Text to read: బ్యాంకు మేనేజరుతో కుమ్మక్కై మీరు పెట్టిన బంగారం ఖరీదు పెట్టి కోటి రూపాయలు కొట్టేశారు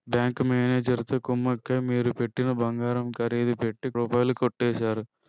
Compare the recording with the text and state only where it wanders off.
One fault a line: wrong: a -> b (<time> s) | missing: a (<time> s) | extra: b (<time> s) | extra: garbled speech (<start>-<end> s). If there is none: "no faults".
missing: కోటి (3.9 s)